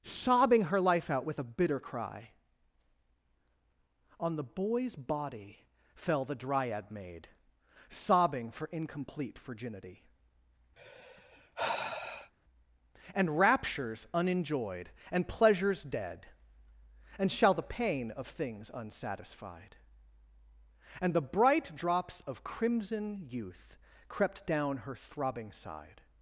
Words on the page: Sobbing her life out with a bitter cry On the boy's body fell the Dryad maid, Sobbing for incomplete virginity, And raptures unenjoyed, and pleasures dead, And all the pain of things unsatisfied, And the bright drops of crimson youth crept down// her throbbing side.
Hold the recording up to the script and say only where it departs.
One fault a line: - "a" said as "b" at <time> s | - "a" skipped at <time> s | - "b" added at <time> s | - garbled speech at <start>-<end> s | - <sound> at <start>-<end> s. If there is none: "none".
- sigh at 10.8-12.3 s
- "all" said as "shall" at 17.3 s